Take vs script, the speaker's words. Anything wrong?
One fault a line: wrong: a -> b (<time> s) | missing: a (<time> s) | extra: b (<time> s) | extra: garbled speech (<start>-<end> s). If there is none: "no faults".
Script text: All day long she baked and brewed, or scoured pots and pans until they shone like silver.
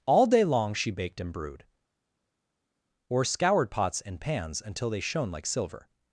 no faults